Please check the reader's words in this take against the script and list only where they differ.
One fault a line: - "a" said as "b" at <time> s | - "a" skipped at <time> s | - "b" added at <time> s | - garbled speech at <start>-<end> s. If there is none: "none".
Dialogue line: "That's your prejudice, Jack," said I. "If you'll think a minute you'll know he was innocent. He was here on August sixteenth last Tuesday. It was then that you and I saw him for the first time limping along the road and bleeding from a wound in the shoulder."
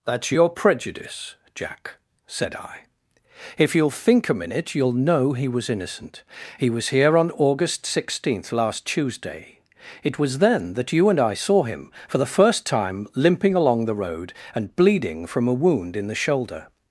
none